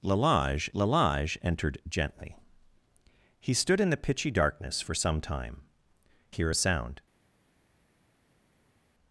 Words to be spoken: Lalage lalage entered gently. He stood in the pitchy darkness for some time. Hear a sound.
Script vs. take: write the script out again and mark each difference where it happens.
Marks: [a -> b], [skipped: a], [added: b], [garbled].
Lalage lalage entered gently. He stood in the pitchy darkness for some time. Hear a sound.